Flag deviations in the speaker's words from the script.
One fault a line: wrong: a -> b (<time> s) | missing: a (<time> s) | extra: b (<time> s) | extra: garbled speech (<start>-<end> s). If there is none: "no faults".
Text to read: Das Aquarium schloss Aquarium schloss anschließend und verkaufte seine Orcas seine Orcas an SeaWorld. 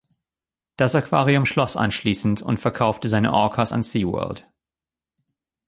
missing: Aquarium schloss (1.7 s)
missing: seine Orcas (3.7 s)